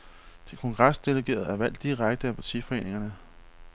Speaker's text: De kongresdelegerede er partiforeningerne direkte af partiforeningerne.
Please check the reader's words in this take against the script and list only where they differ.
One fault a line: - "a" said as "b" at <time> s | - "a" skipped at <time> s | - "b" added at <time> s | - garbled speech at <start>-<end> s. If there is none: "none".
- "partiforeningerne" said as "valgt" at 1.6 s